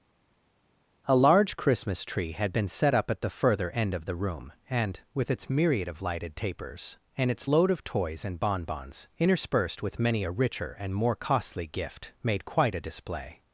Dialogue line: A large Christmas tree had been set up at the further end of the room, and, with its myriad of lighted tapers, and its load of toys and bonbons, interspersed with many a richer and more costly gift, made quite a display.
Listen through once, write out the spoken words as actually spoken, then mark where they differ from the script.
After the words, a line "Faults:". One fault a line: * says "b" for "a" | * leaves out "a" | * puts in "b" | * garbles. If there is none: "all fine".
A large Christmas tree had been set up at the further end of the room, and, with its myriad of lighted tapers, and its load of toys and bonbons, interspersed with many a richer and more costly gift, made quite a display.
Faults:
all fine